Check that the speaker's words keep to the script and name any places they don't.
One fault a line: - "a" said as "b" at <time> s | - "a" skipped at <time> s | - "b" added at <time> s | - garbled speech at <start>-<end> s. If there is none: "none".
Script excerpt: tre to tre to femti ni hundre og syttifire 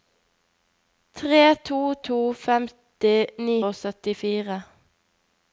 - "tre" skipped at 1.8 s
- "hundre" skipped at 3.6 s